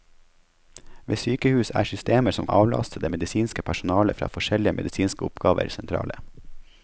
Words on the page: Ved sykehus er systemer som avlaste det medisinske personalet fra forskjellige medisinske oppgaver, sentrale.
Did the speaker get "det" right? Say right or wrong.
right